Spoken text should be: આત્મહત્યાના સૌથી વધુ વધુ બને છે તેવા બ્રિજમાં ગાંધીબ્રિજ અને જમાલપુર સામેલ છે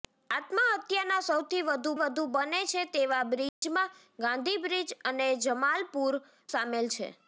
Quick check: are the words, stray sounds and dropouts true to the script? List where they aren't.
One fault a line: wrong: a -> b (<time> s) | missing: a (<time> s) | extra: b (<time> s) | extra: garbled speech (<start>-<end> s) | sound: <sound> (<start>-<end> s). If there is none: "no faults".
sound: dropout (3.5-3.6 s)